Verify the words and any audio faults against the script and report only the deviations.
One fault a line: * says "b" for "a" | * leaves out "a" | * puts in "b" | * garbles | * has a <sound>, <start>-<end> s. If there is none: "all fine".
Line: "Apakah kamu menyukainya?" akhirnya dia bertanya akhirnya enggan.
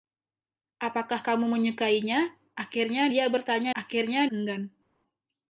all fine